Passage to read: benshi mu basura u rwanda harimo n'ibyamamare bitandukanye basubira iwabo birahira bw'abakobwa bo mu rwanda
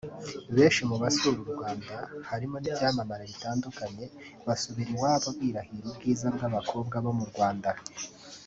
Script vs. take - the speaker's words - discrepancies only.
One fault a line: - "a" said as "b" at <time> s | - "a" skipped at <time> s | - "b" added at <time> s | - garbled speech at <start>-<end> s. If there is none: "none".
- "ubwiza" added at 5.9 s